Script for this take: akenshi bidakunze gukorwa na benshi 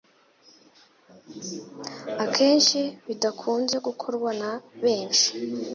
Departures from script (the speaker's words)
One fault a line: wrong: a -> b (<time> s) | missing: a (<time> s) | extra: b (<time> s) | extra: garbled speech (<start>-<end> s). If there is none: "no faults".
no faults